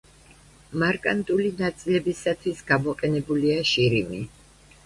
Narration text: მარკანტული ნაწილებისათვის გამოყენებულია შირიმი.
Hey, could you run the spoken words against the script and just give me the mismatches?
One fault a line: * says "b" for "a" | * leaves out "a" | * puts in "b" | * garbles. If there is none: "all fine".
all fine